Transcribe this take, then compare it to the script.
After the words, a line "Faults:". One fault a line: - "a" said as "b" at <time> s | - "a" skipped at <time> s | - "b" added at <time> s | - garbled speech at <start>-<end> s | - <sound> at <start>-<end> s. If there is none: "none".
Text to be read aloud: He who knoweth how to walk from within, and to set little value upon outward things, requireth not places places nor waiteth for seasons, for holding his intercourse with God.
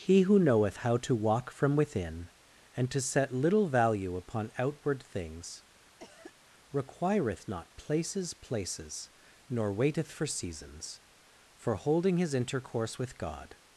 He who knoweth how to walk from within, and to set little value upon outward things, requireth not places places nor waiteth for seasons, for holding his intercourse with God.
Faults:
- cough at 6.0-6.4 s